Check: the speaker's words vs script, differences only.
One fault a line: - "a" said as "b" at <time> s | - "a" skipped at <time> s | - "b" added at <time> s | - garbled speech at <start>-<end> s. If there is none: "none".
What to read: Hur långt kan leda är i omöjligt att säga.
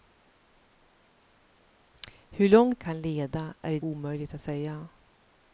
none